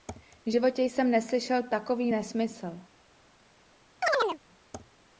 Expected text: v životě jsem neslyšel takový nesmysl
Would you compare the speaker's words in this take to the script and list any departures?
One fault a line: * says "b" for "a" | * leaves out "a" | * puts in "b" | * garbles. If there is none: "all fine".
all fine